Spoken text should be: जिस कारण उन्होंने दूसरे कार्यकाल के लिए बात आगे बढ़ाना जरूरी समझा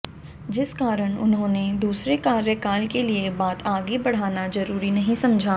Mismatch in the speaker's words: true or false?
true